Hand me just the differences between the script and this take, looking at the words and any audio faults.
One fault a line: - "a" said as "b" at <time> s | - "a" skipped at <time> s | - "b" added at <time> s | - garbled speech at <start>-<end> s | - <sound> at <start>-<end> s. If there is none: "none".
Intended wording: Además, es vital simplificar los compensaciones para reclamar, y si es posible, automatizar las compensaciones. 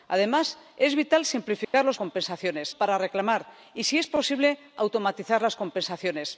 - dropout at 1.6-1.7 s